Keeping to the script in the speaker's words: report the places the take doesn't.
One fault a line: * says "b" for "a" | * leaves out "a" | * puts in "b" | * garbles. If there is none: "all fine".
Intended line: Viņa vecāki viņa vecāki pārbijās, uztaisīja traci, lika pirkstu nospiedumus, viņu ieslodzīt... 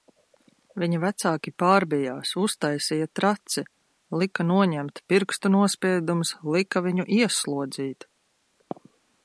* leaves out "viņa vecāki"
* puts in "noņemt"
* puts in "lika"